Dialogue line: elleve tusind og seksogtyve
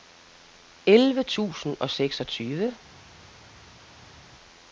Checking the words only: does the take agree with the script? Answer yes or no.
yes